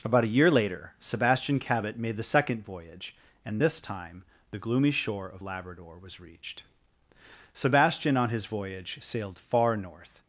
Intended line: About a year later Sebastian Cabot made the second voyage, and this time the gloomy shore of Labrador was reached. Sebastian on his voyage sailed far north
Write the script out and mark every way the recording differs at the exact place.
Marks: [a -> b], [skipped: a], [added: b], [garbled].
About a year later Sebastian Cabot made the second voyage, and this time the gloomy shore of Labrador was reached. Sebastian on his voyage sailed far north